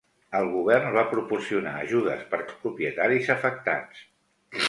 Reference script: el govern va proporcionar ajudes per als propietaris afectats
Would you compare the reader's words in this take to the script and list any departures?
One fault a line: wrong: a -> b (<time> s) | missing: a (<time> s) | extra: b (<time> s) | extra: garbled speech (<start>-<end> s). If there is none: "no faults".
no faults